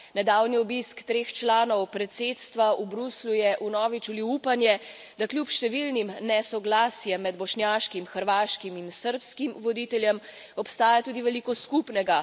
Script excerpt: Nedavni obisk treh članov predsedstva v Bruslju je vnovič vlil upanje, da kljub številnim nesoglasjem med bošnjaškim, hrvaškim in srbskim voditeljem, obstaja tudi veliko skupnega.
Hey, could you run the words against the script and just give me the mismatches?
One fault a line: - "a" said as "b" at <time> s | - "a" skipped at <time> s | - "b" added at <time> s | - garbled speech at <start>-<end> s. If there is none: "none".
none